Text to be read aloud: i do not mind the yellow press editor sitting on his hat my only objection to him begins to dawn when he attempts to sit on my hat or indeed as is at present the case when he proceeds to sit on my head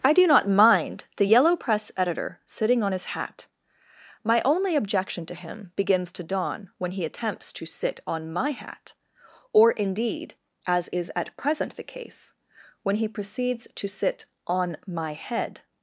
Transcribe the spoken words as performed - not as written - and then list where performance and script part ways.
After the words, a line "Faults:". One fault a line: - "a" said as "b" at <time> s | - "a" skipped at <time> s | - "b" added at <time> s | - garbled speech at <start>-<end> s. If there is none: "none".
i do not mind the yellow press editor sitting on his hat my only objection to him begins to dawn when he attempts to sit on my hat or indeed as is at present the case when he proceeds to sit on my head
Faults:
none